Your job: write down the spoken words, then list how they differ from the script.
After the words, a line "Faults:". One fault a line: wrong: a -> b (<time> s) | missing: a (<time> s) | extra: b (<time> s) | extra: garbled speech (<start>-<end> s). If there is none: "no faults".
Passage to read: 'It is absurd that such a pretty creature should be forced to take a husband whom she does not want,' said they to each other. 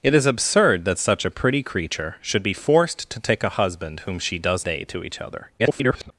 'It is absurd that such a pretty creature should be forced to take a husband whom she does they to each other. [garbled]
Faults:
missing: not want said (4.7 s)
extra: garbled speech (5.6-6.1 s)